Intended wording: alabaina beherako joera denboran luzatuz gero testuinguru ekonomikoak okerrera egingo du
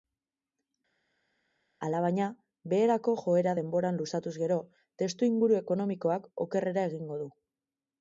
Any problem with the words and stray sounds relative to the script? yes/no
no